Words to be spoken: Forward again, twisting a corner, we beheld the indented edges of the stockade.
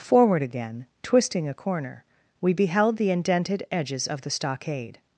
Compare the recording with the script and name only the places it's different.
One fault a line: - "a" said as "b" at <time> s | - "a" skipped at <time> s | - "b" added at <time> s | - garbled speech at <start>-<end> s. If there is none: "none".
none